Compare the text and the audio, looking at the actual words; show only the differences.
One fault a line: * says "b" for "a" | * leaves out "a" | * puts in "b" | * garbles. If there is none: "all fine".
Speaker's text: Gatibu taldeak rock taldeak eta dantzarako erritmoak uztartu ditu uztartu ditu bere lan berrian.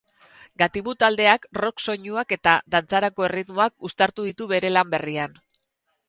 * says "soinuak" for "taldeak"
* leaves out "uztartu ditu"